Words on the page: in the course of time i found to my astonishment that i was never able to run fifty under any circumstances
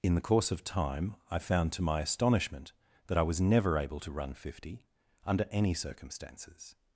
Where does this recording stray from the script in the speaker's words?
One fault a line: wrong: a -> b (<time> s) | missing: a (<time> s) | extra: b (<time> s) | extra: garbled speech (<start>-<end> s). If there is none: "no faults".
no faults